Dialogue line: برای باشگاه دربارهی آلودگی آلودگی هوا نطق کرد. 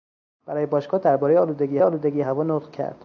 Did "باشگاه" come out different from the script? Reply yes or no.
no